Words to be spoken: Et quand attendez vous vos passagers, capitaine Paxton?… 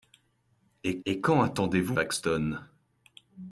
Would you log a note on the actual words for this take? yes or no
yes